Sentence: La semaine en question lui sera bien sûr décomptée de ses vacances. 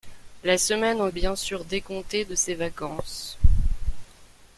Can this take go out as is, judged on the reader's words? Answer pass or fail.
fail